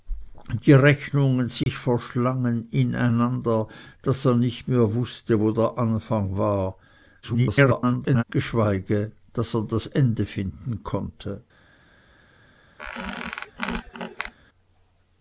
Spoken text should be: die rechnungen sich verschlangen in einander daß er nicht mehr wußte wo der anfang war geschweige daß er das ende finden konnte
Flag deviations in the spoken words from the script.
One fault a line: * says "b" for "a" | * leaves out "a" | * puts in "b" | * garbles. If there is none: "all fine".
* garbles